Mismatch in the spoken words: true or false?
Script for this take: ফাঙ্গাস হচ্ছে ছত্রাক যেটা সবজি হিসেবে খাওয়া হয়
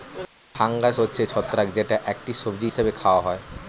true